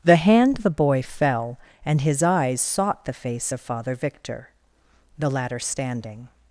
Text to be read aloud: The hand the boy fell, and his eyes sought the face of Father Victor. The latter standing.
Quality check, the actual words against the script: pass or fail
pass